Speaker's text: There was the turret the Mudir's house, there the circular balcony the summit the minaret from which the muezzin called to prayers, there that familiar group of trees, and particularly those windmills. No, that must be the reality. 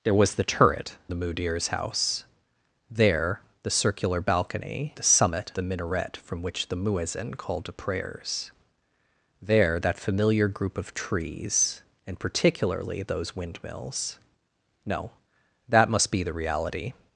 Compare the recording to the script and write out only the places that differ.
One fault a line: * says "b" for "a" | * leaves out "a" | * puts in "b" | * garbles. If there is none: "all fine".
all fine